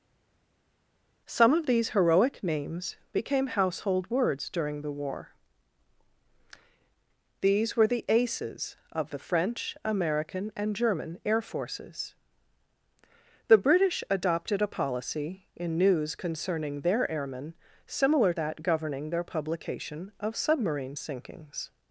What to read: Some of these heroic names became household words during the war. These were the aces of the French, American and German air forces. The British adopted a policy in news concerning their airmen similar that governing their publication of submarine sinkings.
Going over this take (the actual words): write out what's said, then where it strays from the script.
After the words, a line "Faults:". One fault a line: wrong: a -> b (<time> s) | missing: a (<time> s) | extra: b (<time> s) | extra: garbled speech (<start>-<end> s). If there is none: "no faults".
Some of these heroic names became household words during the war. These were the aces of the French, American and German air forces. The British adopted a policy in news concerning their airmen similar that governing their publication of submarine sinkings.
Faults:
no faults